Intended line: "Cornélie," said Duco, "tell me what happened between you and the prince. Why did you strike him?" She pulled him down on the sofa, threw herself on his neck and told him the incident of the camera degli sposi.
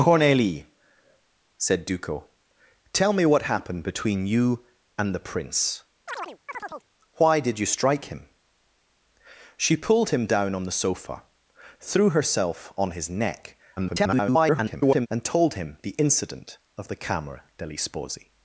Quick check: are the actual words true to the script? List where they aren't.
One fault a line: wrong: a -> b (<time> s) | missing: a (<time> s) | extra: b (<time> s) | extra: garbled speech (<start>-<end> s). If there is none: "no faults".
extra: garbled speech (13.8-15.1 s)